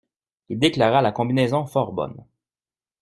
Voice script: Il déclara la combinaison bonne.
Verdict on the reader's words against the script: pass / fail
fail